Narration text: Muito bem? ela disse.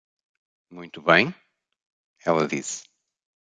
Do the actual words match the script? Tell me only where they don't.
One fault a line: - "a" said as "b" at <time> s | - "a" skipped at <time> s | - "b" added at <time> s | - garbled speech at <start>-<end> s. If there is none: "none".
none